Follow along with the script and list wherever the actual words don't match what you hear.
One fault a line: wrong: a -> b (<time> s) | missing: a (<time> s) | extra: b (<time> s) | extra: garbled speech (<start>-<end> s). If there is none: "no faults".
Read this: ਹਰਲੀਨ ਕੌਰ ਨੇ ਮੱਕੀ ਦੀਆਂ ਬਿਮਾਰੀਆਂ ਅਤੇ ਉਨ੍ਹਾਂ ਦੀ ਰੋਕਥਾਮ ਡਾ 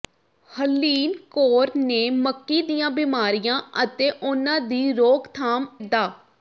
no faults